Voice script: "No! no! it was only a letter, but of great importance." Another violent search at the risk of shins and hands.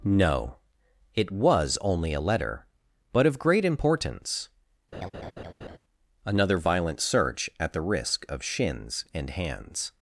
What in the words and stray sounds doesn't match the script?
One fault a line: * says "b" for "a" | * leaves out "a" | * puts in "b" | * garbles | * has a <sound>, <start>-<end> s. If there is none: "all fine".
* leaves out "no"
* has a laugh, 4.9-5.8 s